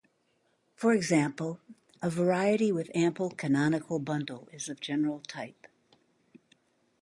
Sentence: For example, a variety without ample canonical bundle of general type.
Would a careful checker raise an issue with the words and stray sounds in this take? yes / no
yes